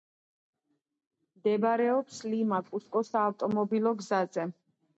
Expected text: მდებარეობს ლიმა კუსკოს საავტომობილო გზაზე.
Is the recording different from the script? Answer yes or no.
no